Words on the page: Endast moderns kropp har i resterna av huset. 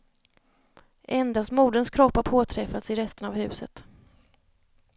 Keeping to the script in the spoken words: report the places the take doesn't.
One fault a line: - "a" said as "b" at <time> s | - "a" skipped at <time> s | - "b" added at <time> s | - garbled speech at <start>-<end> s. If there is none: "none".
- "påträffats" added at 2.2 s